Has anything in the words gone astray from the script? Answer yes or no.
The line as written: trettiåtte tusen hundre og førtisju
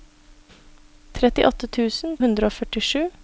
no